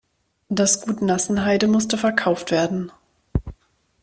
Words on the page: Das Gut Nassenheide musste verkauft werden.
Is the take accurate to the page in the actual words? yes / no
yes